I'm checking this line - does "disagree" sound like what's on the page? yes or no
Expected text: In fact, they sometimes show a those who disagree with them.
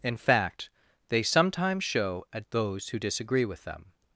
yes